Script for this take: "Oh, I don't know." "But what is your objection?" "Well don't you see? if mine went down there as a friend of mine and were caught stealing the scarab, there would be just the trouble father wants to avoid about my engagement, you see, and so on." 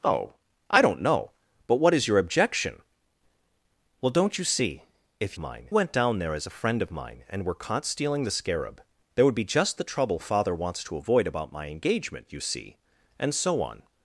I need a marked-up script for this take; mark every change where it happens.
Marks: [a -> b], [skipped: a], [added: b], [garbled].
"Oh, I don't know." "But what is your objection?" "Well don't you see? if mine went down there as a friend of mine and were caught stealing the scarab, there would be just the trouble father wants to avoid about my engagement, you see, and so on."